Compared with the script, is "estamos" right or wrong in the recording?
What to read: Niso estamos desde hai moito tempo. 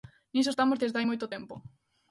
right